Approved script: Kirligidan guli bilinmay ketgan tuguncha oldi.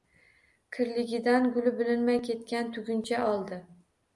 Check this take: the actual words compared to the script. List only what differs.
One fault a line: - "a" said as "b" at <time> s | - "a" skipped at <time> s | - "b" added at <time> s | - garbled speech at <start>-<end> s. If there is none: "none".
none